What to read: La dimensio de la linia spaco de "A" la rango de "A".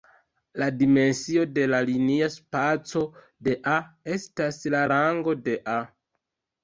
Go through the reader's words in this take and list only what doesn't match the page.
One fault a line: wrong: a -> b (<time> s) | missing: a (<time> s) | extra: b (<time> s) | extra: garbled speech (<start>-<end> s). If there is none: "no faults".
extra: estas (4.2 s)